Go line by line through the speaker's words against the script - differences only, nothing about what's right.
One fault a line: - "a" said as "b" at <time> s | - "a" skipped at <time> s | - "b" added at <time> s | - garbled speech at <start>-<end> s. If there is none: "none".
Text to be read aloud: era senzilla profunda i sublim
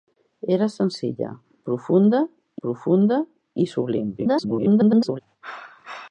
- "profunda" added at 2.6 s
- garbled speech at 4.2-5.2 s